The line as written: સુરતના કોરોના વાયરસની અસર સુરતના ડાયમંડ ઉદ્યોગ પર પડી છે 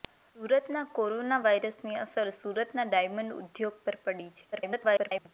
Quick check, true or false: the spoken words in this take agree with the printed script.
false